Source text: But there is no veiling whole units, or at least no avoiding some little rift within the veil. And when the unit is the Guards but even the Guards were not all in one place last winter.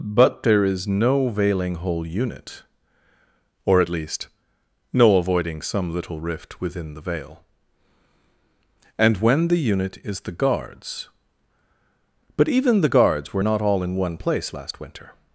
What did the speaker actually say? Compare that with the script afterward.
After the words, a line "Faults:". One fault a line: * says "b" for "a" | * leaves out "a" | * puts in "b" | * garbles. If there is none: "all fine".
But there is no veiling whole unit, or at least no avoiding some little rift within the veil. And when the unit is the Guards but even the Guards were not all in one place last winter.
Faults:
* says "unit" for "units"